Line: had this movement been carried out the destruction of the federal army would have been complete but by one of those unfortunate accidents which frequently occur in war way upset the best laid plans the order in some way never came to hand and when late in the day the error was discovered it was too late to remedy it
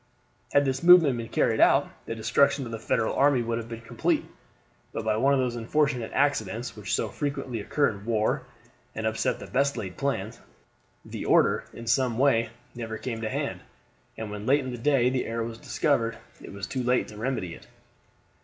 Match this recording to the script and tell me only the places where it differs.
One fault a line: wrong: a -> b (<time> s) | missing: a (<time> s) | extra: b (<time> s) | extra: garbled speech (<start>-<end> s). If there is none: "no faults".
extra: so (6.9 s)
wrong: way -> and (8.9 s)